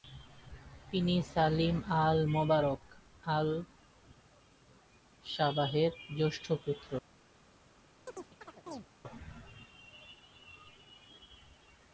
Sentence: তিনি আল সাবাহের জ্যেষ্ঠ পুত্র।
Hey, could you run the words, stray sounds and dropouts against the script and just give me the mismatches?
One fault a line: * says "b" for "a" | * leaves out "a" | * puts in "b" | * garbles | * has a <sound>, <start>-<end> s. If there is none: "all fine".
* puts in "সালিম আল মোবারক"
* has a chirp, 8.1-8.9 s